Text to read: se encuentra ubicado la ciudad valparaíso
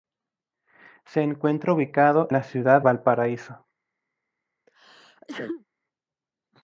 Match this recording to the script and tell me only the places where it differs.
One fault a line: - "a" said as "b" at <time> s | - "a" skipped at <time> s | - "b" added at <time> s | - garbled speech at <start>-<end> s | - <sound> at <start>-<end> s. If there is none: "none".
- sneeze at 4.7-5.6 s